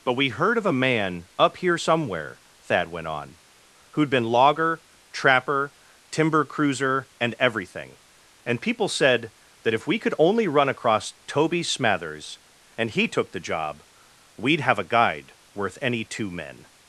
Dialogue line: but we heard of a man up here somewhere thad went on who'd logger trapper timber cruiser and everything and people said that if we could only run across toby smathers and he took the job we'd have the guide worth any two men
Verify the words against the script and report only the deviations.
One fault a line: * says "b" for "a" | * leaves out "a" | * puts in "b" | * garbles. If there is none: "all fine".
* puts in "been"
* says "a" for "the"